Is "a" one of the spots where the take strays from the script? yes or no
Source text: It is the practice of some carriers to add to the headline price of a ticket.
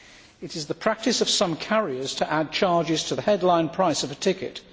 no